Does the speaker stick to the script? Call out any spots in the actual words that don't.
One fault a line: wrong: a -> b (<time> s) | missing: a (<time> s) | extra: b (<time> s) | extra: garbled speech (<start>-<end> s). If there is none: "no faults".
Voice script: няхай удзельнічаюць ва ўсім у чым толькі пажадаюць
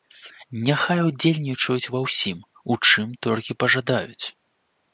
no faults